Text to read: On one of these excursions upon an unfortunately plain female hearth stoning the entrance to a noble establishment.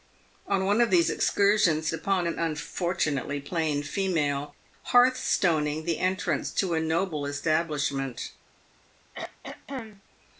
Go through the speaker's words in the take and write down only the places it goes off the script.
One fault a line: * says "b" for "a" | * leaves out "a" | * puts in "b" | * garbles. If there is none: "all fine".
all fine